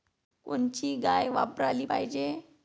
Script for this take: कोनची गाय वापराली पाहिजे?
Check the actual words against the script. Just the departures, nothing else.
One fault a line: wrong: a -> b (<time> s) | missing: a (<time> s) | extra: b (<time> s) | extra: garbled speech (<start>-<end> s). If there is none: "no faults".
no faults